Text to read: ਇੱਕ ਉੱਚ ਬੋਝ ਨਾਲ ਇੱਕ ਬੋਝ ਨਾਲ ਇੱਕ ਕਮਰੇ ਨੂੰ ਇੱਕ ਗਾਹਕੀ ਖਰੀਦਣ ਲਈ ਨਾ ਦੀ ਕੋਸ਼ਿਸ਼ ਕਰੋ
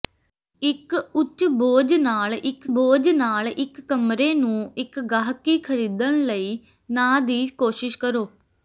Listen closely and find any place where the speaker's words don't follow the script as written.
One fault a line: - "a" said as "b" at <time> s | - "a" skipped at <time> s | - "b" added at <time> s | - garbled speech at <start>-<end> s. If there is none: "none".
none